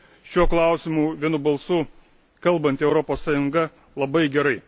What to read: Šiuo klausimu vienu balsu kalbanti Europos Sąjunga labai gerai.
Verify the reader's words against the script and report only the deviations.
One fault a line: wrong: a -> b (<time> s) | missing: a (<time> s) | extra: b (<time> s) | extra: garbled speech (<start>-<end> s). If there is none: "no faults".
no faults